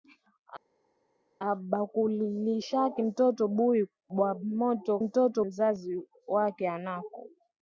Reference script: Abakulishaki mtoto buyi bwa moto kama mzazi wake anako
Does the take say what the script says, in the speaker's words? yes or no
no